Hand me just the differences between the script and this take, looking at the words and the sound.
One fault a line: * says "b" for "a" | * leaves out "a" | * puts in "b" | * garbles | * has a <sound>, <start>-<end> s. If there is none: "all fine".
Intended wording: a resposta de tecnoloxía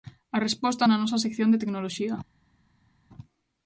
* puts in "na nosa sección"